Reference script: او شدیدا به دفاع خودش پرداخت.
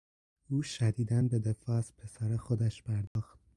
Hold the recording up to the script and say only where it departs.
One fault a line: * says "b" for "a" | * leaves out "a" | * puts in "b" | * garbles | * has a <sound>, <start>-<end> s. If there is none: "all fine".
* puts in "از پسر"
* has a dropout, 3.1-3.2 s